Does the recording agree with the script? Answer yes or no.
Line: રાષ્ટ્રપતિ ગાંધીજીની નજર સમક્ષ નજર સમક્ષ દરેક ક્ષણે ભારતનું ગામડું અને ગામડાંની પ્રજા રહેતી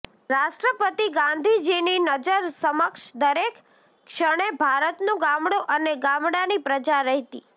no